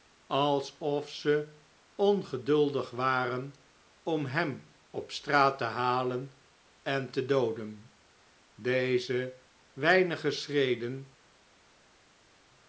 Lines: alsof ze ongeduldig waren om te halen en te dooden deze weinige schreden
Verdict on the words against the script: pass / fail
fail